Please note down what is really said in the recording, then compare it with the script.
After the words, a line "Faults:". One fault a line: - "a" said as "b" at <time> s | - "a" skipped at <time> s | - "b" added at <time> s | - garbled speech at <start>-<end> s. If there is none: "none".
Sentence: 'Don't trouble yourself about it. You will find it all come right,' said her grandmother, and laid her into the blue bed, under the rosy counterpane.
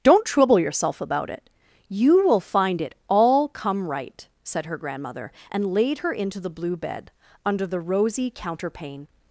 'Don't trouble yourself about it. You will find it all come right,' said her grandmother, and laid her into the blue bed, under the rosy counterpane.
Faults:
none